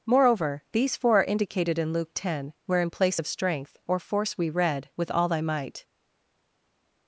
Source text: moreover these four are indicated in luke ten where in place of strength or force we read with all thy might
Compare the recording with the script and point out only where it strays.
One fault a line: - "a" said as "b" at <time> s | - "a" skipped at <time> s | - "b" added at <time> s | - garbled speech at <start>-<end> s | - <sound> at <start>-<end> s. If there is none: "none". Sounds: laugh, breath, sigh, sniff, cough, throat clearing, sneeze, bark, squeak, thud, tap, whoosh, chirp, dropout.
none